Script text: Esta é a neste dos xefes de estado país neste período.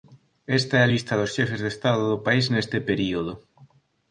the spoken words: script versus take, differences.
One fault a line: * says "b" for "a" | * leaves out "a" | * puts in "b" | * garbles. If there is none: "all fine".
* says "lista" for "neste"
* puts in "do"